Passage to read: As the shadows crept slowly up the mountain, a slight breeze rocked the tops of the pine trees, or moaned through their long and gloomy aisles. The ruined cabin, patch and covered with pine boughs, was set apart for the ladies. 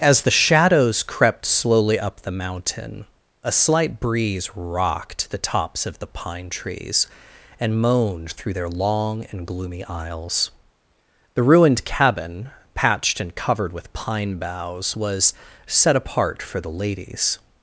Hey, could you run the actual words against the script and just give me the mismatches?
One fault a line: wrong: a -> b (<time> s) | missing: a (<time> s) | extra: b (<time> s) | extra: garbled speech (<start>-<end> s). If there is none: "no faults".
wrong: or -> and (7.6 s)
wrong: patch -> patched (12.7 s)